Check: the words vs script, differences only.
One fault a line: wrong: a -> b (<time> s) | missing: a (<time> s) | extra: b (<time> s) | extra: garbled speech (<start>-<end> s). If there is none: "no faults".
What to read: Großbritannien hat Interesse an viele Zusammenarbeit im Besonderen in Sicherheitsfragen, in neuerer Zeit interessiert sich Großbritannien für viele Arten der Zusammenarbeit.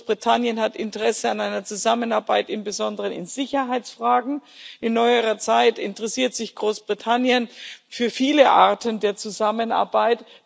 wrong: viele -> einer (1.4 s)